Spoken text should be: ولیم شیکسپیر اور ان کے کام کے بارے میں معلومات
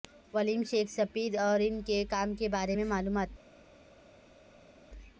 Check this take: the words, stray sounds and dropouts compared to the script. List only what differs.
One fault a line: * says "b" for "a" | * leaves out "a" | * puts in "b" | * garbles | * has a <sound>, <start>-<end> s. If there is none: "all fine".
all fine